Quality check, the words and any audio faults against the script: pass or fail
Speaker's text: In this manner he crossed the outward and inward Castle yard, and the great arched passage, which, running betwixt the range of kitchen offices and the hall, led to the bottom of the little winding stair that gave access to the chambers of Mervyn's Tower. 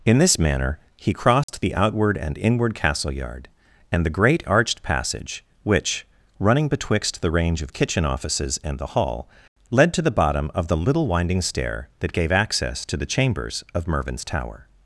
fail